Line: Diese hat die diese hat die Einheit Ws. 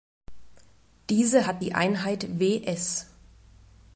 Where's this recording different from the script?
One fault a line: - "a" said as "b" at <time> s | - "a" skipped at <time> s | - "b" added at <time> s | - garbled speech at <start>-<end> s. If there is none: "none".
- "diese hat die" skipped at 1.7 s